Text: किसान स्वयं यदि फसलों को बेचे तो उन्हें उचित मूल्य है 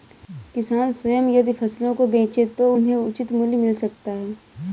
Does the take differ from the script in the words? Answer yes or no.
yes